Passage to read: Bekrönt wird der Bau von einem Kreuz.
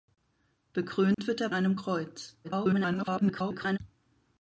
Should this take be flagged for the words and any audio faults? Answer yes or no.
yes